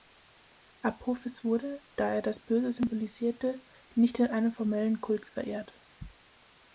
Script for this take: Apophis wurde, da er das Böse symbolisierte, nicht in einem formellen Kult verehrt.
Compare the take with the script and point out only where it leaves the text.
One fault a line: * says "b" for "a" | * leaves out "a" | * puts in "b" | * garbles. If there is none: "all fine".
all fine